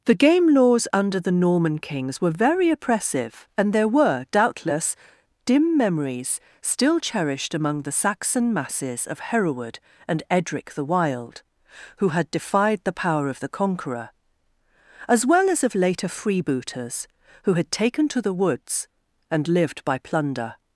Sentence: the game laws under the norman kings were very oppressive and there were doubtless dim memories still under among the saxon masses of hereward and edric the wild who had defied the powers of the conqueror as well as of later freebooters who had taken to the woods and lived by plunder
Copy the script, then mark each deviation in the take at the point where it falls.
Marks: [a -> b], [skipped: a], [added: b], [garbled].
the game laws under the norman kings were very oppressive and there were doubtless dim memories still [under -> cherished] among the saxon masses of hereward and edric the wild who had defied the [powers -> power] of the conqueror as well as of later freebooters who had taken to the woods and lived by plunder